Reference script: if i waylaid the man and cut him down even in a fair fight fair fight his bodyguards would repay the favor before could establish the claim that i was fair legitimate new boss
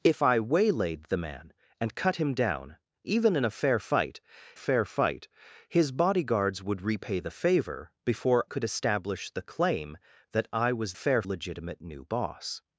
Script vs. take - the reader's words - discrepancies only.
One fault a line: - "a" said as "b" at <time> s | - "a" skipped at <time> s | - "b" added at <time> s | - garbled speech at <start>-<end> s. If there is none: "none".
none